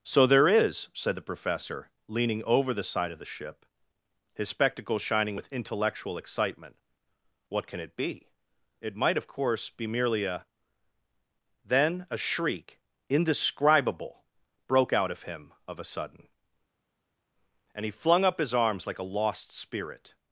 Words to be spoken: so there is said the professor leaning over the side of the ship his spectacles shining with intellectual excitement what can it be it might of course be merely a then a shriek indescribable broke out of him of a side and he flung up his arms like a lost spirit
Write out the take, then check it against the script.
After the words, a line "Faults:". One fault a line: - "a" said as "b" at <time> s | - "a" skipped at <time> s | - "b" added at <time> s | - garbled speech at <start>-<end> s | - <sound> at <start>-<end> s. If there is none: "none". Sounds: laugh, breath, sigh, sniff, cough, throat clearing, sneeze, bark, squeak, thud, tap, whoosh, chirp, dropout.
so there is said the professor leaning over the side of the ship his spectacles shining with intellectual excitement what can it be it might of course be merely a then a shriek indescribable broke out of him of a sudden and he flung up his arms like a lost spirit
Faults:
- "side" said as "sudden" at 15.9 s